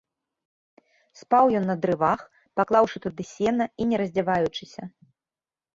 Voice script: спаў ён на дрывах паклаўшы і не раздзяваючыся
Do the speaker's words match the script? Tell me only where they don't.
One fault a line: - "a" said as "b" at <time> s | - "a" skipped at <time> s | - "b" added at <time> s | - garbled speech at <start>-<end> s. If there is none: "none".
- "туды сена" added at 3.0 s